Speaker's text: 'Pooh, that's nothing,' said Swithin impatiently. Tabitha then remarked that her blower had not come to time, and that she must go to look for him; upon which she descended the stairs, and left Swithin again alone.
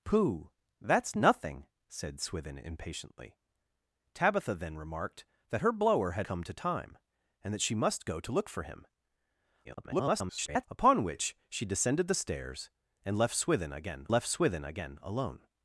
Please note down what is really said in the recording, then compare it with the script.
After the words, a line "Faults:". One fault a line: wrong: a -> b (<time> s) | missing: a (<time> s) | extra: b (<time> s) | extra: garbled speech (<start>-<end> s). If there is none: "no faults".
'Pooh, that's nothing,' said Swithin impatiently. Tabitha then remarked that her blower had come to time, and that she must go to look for him; [garbled] upon which she descended the stairs, and left Swithin again left Swithin again alone.
Faults:
missing: not (6.3 s)
extra: garbled speech (9.6-10.7 s)
extra: left Swithin again (14.1 s)